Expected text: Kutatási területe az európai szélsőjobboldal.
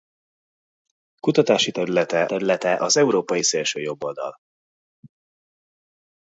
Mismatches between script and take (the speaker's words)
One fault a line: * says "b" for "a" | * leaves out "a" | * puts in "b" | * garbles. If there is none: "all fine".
* puts in "területe"